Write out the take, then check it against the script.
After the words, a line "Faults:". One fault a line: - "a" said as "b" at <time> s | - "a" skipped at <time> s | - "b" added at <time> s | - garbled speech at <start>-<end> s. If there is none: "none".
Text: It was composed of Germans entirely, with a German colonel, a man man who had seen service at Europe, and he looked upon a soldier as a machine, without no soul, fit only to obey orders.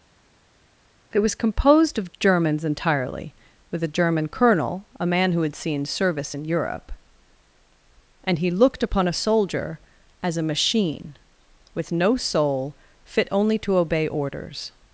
It was composed of Germans entirely, with a German colonel, a man who had seen service in Europe, and he looked upon a soldier as a machine, with no soul, fit only to obey orders.
Faults:
- "man" skipped at 5.3 s
- "at" said as "in" at 6.3 s
- "without" said as "with" at 11.7 s